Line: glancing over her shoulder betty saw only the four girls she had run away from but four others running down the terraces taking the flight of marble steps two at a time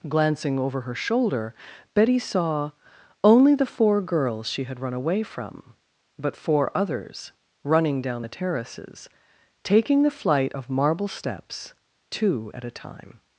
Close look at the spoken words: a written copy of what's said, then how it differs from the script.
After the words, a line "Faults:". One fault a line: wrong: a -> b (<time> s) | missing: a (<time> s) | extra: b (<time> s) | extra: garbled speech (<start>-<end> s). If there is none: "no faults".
glancing over her shoulder betty saw only the four girls she had run away from but four others running down the terraces taking the flight of marble steps two at a time
Faults:
no faults